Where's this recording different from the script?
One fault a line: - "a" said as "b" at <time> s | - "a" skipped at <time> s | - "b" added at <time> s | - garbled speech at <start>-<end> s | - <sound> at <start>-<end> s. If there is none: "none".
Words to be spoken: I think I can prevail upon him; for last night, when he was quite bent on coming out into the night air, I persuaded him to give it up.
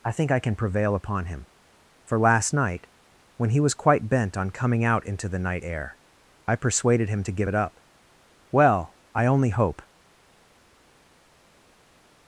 - "Well I only hope" added at 8.5 s